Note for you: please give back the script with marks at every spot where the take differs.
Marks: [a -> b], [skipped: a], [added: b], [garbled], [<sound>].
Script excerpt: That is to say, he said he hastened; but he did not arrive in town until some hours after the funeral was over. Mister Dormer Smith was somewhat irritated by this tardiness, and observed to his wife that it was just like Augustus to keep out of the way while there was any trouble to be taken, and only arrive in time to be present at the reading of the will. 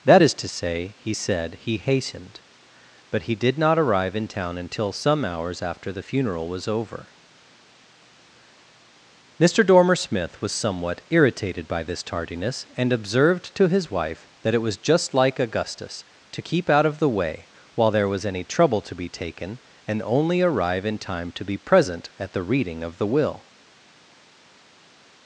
That is to say, he said he hastened; but he did not arrive in town until some hours after the funeral was over. Mister Dormer Smith was somewhat irritated by this tardiness, and observed to his wife that it was just like Augustus to keep out of the way while there was any trouble to be taken, and only arrive in time to be present at the reading of the will.